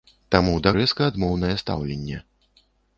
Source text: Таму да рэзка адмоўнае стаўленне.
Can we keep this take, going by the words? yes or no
yes